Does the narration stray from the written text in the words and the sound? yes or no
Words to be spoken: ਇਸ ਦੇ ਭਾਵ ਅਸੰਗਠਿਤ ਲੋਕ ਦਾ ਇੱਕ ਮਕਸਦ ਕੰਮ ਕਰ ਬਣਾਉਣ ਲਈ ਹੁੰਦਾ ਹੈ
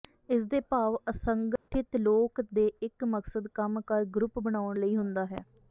yes